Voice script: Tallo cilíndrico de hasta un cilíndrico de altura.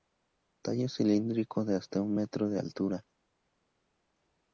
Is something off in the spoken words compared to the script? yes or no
yes